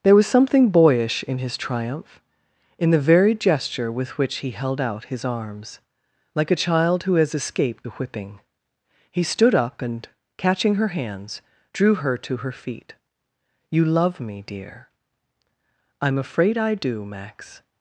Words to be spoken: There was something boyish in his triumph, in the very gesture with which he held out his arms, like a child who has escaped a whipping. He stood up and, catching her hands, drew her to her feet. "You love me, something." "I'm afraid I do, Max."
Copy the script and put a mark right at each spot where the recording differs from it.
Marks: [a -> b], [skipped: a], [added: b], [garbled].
There was something boyish in his triumph, in the very gesture with which he held out his arms, like a child who has escaped a whipping. He stood up and, catching her hands, drew her to her feet. "You love me, [something." -> dear] "I'm afraid I do, Max."